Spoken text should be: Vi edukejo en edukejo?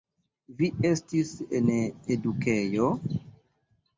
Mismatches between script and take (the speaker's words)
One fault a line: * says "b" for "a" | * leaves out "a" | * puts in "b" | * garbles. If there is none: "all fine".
* says "estis" for "edukejo"